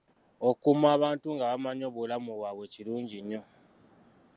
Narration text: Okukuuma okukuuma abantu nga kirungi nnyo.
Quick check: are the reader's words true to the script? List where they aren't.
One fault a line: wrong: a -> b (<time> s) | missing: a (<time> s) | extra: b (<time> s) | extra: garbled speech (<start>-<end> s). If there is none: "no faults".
missing: okukuuma (0.9 s)
extra: bamanyi obulamu bwabwe (1.5 s)